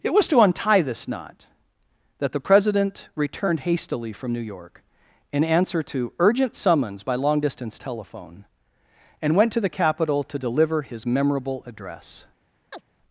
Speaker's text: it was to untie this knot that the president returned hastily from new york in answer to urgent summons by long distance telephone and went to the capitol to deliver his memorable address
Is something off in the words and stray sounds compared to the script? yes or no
yes